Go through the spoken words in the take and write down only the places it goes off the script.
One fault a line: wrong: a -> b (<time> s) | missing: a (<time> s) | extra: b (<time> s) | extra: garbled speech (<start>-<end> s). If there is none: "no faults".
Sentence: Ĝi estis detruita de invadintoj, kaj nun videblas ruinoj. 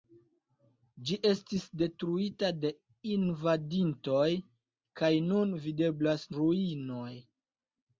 no faults